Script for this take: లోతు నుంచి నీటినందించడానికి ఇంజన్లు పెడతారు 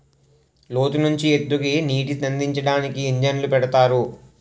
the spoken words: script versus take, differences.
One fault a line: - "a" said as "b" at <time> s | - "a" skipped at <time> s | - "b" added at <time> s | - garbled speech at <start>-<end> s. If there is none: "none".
- "ఎత్తుకి" added at 1.3 s